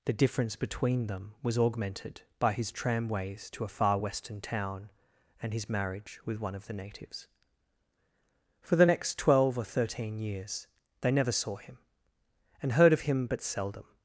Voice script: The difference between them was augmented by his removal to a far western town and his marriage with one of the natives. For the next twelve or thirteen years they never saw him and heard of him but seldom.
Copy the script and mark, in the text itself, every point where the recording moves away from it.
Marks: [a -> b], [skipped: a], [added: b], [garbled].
The difference between them was augmented by his [removal -> tramways] to a far western town and his marriage with one of the natives. For the next twelve or thirteen years they never saw him and heard of him but seldom.